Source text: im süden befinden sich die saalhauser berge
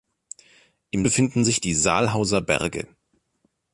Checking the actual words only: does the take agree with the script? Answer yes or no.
no